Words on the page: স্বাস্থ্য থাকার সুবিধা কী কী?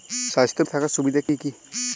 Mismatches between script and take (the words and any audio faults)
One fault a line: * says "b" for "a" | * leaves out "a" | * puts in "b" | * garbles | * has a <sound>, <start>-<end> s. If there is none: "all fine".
* has a dropout, 1.3-1.3 s